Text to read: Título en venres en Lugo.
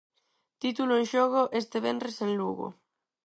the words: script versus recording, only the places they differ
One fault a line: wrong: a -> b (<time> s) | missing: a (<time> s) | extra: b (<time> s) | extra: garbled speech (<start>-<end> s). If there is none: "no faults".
extra: xogo este (1.1 s)